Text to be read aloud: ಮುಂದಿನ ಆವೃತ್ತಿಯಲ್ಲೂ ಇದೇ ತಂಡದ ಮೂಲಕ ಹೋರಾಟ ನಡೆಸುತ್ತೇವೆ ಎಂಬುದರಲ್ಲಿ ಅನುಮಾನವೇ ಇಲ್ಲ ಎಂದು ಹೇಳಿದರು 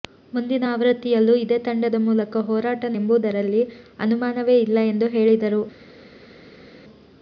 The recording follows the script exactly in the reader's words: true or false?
false